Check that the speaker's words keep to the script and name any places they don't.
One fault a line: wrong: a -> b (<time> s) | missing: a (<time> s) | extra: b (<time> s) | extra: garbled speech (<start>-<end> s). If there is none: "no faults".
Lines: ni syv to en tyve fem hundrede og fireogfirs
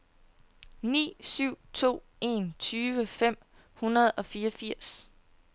no faults